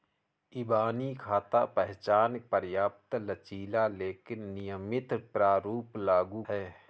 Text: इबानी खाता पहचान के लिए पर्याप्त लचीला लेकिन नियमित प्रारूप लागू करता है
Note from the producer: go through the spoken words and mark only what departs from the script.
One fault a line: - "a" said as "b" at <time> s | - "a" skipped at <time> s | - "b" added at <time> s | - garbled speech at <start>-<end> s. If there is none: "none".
- "के लिए" skipped at 2.4 s
- "करता" skipped at 6.4 s